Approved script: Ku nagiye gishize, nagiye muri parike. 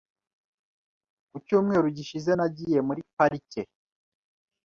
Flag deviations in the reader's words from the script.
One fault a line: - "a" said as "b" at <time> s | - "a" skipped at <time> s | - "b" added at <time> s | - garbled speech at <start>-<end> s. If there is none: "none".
- "nagiye" said as "cyumweru" at 1.4 s